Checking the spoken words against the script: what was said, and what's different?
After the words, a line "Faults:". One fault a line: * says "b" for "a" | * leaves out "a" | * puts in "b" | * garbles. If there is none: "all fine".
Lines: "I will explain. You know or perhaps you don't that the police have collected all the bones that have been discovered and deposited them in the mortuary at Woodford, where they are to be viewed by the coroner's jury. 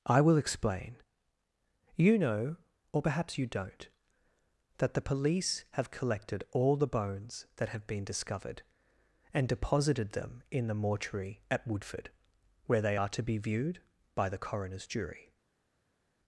"I will explain. You know or perhaps you don't that the police have collected all the bones that have been discovered and deposited them in the mortuary at Woodford, where they are to be viewed by the coroner's jury.
Faults:
all fine